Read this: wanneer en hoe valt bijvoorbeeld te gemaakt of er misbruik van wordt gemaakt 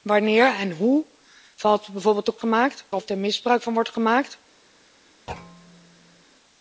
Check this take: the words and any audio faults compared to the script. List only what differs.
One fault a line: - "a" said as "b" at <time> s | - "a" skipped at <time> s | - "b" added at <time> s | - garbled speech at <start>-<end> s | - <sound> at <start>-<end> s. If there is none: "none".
- thud at 5.3-6.2 s